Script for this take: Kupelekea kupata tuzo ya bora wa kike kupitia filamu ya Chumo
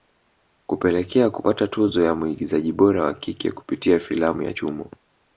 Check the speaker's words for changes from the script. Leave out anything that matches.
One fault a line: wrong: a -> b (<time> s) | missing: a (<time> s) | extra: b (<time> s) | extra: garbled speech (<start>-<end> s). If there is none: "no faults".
extra: mwigizaji (2.2 s)